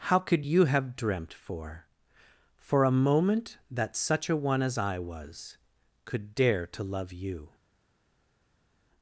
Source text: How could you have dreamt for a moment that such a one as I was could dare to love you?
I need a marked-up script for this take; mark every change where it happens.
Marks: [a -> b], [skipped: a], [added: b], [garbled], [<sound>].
How could you have dreamt for [added: for] a moment that such a one as I was could dare to love you?